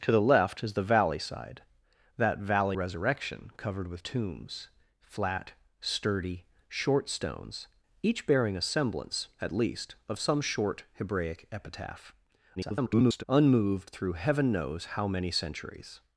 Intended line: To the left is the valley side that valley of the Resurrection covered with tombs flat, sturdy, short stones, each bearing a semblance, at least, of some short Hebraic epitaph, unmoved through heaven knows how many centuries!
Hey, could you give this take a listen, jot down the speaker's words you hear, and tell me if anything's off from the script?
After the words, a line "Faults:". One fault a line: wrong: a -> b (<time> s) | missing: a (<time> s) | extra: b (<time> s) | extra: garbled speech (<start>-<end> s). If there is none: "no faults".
To the left is the valley side that valley Resurrection covered with tombs flat, sturdy, short stones, each bearing a semblance, at least, of some short Hebraic epitaph, [garbled] unmoved through heaven knows how many centuries!
Faults:
missing: of the (2.8 s)
extra: garbled speech (12.6-13.2 s)